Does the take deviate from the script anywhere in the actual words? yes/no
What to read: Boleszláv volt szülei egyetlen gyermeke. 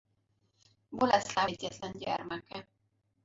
yes